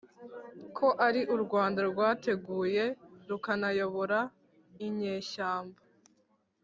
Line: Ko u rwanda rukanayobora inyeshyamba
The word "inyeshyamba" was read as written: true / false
true